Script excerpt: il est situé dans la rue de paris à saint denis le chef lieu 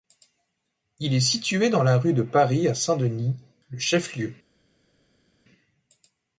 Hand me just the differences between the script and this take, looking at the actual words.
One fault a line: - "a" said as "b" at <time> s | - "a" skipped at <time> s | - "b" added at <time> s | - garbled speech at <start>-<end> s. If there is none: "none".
none